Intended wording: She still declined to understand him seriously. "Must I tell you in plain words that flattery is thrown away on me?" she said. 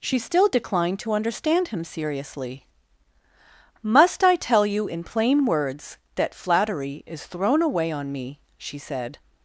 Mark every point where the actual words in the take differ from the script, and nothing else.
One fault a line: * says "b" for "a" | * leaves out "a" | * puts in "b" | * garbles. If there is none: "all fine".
all fine